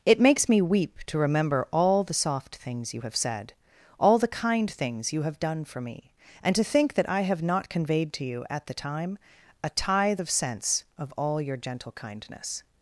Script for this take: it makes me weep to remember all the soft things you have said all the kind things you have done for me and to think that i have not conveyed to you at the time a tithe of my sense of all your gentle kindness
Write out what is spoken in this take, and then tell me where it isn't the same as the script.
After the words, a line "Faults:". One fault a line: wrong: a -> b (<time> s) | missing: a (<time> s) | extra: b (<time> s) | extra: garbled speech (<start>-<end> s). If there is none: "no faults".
it makes me weep to remember all the soft things you have said all the kind things you have done for me and to think that i have not conveyed to you at the time a tithe of sense of all your gentle kindness
Faults:
missing: my (10.3 s)